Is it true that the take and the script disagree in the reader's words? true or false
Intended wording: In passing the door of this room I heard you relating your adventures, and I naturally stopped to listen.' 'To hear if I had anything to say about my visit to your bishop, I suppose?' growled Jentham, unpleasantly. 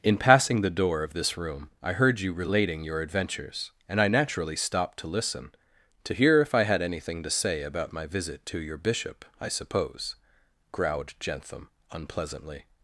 false